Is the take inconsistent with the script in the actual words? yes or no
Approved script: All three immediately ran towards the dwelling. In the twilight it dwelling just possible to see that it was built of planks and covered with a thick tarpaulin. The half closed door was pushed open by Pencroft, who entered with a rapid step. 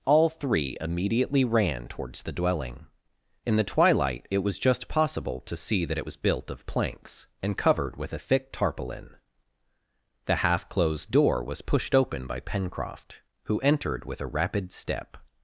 yes